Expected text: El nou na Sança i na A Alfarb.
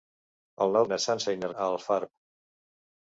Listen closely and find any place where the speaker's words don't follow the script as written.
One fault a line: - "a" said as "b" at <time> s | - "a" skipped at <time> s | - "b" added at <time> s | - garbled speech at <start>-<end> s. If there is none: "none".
none